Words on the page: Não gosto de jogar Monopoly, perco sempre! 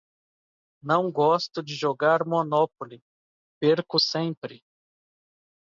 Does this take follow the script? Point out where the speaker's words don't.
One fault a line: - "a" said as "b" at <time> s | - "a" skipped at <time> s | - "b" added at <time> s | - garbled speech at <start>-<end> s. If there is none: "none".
none